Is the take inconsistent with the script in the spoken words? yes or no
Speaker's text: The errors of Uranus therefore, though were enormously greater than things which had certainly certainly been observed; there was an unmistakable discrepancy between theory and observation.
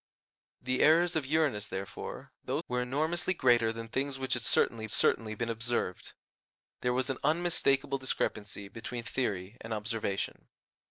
no